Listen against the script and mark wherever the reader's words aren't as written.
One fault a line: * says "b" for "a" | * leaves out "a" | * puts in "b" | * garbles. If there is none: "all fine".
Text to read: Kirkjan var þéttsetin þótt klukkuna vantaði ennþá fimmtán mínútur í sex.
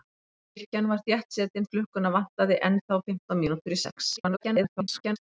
* leaves out "þótt"
* garbles